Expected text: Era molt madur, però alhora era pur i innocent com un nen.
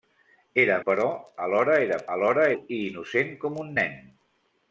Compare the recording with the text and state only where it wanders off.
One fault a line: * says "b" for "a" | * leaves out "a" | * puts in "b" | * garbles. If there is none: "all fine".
* leaves out "molt madur"
* says "alhora" for "pur"